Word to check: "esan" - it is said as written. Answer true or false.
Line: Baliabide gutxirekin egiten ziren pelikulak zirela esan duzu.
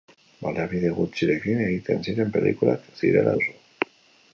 false